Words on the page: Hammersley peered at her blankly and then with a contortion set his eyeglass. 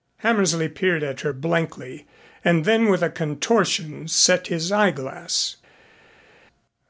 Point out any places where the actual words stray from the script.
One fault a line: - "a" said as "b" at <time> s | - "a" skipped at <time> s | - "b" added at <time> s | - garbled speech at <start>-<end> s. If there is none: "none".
none